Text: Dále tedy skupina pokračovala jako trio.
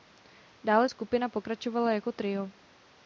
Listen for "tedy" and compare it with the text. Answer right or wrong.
wrong